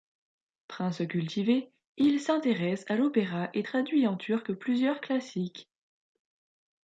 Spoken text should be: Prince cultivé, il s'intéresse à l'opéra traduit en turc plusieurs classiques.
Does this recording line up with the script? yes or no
no